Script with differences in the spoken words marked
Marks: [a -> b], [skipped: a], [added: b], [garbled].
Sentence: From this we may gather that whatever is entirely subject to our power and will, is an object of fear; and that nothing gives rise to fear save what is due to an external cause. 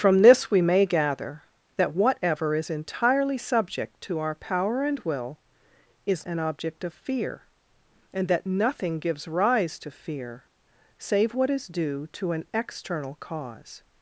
From this we may gather that whatever is entirely subject to our power and will, is an object of fear; and that nothing gives rise to fear save what is due to an external cause.